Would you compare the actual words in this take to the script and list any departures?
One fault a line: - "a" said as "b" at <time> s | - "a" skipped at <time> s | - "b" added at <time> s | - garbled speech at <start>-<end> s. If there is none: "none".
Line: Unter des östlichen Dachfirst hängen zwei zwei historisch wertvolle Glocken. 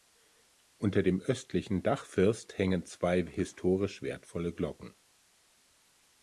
- "des" said as "dem" at 1.0 s
- "zwei" skipped at 3.2 s